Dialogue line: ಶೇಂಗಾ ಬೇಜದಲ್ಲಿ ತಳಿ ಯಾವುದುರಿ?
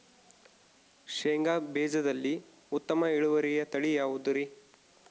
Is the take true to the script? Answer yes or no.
no